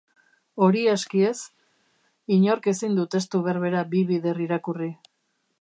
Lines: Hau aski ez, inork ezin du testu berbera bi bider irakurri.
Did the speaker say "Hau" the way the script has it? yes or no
no